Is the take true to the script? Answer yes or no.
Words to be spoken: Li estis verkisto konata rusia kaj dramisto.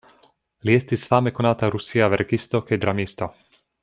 no